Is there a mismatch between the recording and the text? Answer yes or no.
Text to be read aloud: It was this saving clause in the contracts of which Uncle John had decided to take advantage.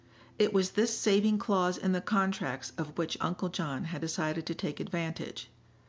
no